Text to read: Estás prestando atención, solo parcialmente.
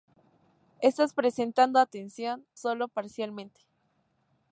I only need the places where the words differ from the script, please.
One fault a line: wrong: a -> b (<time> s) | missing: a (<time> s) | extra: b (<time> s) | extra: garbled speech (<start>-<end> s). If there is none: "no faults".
no faults